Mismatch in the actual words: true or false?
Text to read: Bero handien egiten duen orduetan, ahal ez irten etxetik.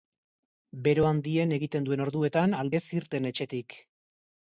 false